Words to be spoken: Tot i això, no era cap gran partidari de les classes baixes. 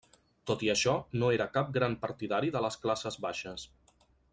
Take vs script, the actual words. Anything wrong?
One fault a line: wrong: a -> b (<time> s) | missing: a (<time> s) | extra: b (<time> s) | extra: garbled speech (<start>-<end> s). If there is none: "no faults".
no faults